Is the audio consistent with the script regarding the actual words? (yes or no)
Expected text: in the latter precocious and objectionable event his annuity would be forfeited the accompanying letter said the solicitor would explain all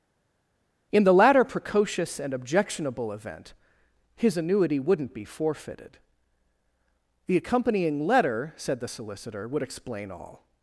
no